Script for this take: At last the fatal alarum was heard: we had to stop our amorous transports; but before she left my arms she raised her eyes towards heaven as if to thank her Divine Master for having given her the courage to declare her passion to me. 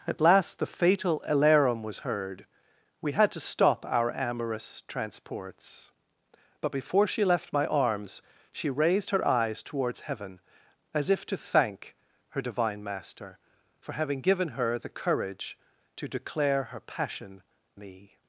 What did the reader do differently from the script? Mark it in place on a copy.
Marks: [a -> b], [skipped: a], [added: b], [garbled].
At last the fatal alarum was heard: we had to stop our amorous transports; but before she left my arms she raised her eyes towards heaven as if to thank her Divine Master for having given her the courage to declare her passion [skipped: to] me.